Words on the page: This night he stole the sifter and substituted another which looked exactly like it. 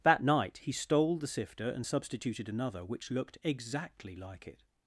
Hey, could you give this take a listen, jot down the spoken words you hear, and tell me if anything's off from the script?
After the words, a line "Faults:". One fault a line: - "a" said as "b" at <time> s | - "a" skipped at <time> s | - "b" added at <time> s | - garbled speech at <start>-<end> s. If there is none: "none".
That night he stole the sifter and substituted another which looked exactly like it.
Faults:
- "This" said as "That" at 0.0 s